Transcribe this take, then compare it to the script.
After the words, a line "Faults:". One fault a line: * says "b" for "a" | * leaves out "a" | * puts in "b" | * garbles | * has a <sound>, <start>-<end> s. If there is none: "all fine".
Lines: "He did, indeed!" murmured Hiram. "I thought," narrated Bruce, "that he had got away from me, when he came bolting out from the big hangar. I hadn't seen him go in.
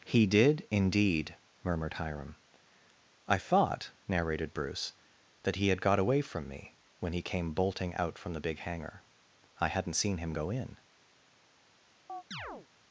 "He did, indeed!" murmured Hiram. "I thought," narrated Bruce, "that he had got away from me, when he came bolting out from the big hangar. I hadn't seen him go in.
Faults:
* has a chirp, 12.1-12.7 s